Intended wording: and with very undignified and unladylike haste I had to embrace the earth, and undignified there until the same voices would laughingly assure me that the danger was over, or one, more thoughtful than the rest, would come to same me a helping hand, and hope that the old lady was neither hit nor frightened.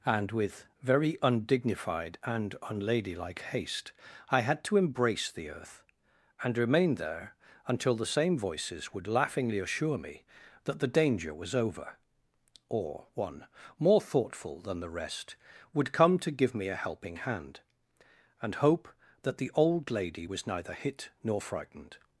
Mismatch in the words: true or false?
true